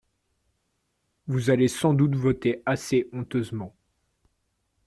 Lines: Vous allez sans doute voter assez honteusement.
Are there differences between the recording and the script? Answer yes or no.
no